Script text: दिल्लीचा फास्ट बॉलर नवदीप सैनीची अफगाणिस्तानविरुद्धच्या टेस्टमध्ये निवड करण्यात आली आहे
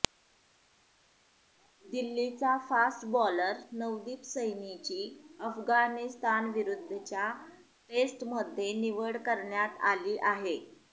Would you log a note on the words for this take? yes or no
no